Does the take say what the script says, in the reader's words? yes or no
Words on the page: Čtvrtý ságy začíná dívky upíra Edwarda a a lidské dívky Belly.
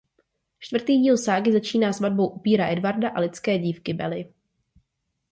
no